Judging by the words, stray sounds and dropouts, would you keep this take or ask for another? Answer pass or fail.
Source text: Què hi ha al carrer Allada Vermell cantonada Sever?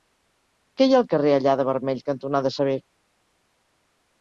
pass